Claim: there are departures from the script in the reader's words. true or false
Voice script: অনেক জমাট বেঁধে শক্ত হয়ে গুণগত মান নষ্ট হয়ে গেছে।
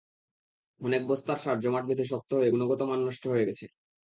true